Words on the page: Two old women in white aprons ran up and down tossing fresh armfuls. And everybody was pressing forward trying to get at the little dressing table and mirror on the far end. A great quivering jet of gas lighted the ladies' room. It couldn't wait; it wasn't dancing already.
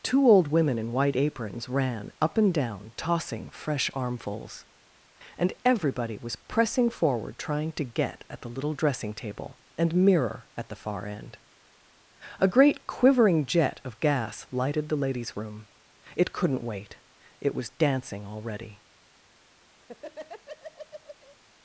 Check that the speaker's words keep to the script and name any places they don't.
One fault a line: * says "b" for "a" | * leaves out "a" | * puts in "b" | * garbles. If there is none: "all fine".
* says "at" for "on"
* says "was" for "wasn't"